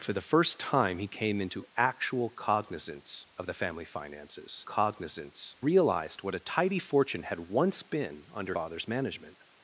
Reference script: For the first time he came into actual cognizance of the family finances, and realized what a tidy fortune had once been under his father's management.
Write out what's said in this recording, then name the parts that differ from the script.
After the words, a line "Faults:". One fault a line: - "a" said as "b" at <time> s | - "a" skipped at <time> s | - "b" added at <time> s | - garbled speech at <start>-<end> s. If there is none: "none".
For the first time he came into actual cognizance of the family finances, cognizance realized what a tidy fortune had once been under father's management.
Faults:
- "and" said as "cognizance" at 4.6 s
- "his" skipped at 8.6 s